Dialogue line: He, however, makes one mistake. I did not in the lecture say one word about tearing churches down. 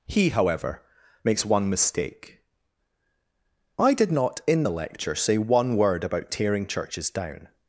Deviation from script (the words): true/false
false